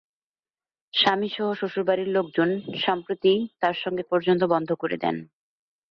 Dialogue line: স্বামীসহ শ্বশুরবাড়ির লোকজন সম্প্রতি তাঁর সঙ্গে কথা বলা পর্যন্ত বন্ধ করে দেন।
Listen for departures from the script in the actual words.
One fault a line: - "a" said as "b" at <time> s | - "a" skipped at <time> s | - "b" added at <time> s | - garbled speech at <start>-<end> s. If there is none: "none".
- "কথা বলা" skipped at 4.0 s